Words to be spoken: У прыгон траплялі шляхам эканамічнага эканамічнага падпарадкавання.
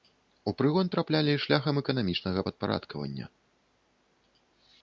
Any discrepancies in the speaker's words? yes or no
yes